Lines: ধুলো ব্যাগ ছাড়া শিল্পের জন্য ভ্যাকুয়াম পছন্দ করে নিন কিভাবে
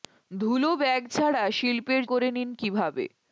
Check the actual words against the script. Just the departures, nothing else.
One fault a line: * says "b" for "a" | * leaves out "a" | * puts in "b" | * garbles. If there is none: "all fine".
* leaves out "জন্য ভ্যাকুয়াম পছন্দ"